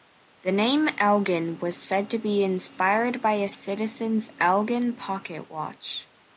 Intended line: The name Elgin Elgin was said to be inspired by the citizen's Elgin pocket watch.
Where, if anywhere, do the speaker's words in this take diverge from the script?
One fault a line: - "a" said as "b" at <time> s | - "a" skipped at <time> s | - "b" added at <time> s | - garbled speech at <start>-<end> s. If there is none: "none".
- "Elgin" skipped at 1.6 s
- "the" said as "a" at 3.3 s